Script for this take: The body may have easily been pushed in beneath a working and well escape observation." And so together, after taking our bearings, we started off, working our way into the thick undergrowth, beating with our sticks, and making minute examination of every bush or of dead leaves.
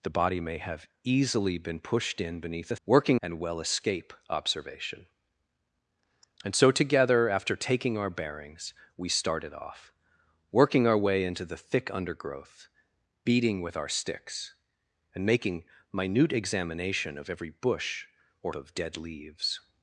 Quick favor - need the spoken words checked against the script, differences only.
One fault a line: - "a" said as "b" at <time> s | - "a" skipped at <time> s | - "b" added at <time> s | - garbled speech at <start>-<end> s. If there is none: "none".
none